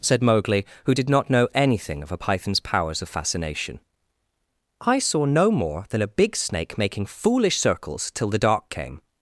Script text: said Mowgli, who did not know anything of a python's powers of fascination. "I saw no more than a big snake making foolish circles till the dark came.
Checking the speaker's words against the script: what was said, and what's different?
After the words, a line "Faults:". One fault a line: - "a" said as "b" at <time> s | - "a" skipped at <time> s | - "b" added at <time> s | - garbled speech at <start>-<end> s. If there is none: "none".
said Mowgli, who did not know anything of a python's powers of fascination. "I saw no more than a big snake making foolish circles till the dark came.
Faults:
none